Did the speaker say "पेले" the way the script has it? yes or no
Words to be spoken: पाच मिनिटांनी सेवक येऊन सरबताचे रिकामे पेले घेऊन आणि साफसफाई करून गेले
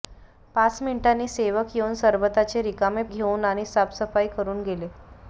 no